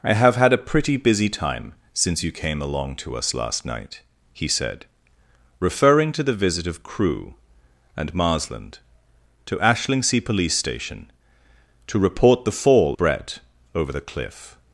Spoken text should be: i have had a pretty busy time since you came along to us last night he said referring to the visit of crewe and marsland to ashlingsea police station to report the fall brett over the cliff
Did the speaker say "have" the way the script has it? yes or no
yes